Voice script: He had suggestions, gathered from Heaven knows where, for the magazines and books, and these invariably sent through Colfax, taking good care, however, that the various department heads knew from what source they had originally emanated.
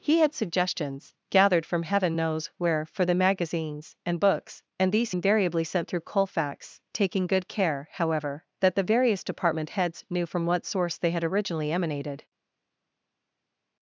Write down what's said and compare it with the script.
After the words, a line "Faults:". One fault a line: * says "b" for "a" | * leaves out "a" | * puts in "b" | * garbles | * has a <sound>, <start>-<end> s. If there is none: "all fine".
He had suggestions, gathered from Heaven knows where, for the magazines and books, and these invariably sent through Colfax, taking good care, however, that the various department heads knew from what source they had originally emanated.
Faults:
all fine